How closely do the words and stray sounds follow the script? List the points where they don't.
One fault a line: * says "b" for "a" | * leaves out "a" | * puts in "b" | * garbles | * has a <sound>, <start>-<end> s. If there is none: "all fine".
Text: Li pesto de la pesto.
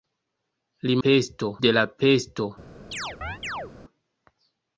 * has a chirp, 2.9-3.7 s